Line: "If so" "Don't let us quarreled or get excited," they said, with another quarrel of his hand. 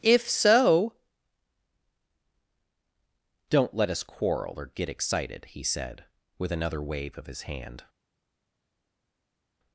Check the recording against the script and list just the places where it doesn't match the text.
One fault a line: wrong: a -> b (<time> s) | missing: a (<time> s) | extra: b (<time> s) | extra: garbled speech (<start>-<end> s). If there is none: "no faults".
wrong: quarreled -> quarrel (4.0 s)
wrong: they -> he (5.5 s)
wrong: quarrel -> wave (6.8 s)